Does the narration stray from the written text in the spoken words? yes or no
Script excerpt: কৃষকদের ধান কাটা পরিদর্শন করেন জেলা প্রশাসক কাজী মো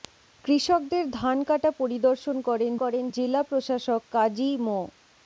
yes